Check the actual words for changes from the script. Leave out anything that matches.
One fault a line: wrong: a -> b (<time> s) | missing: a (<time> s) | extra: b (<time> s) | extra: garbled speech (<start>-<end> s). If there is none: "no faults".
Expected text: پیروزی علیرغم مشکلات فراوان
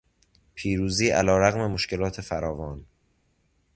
no faults